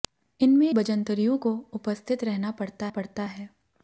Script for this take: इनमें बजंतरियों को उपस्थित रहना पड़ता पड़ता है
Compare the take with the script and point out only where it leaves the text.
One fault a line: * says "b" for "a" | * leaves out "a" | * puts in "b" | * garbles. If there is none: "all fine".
all fine